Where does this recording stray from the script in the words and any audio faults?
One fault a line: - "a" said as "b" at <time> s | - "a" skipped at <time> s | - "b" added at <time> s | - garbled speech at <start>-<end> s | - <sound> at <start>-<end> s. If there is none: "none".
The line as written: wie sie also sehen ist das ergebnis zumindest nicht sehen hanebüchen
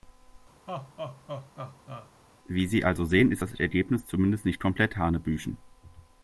- laugh at 0.7-2.1 s
- "sehen" said as "komplett" at 4.6 s